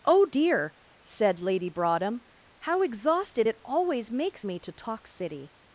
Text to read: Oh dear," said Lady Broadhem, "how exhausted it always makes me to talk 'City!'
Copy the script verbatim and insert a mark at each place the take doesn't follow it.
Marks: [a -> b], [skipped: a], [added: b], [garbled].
Oh dear," said Lady Broadhem, "how exhausted it always makes me to talk 'City!'